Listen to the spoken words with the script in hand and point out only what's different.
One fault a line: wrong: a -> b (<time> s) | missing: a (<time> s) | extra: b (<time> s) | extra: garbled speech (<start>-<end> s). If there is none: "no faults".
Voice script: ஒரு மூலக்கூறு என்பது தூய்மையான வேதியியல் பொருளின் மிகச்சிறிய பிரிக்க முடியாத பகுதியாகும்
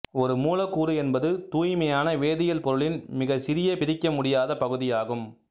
no faults